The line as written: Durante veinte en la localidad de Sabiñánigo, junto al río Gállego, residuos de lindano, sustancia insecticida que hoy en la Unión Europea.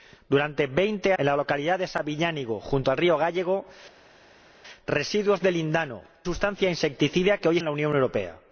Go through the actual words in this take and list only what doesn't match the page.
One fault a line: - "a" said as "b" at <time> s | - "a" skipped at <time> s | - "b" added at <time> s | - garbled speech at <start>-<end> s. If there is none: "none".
none